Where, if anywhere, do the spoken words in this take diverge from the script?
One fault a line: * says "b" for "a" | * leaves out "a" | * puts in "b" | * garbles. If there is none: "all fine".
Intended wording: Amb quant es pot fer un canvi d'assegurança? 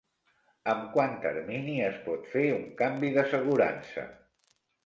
* puts in "termini"